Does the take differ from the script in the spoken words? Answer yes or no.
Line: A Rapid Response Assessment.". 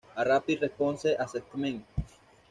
no